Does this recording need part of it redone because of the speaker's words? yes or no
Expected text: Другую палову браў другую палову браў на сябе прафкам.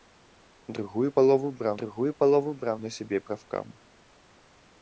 no